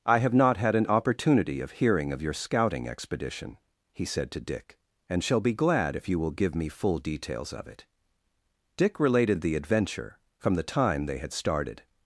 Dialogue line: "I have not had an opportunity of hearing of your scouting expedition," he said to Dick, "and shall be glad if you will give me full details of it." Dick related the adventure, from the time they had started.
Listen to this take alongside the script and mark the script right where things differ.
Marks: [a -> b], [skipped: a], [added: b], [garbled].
"I have not had an opportunity of hearing of your scouting expedition," he said to Dick, "and shall be glad if you will give me full details of it." Dick related the adventure, from the time they had started.